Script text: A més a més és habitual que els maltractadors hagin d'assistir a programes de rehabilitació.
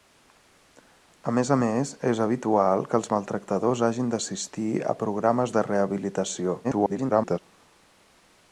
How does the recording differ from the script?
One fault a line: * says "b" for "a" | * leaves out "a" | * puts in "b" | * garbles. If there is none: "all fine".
* garbles